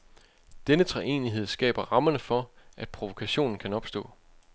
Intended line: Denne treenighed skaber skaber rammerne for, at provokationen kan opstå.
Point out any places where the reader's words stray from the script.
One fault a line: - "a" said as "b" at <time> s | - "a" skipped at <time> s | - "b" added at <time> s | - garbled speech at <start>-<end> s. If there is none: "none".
- "skaber" skipped at 1.9 s